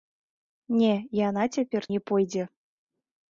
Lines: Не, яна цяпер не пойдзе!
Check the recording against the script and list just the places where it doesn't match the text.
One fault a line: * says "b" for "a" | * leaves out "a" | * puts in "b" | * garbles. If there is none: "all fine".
all fine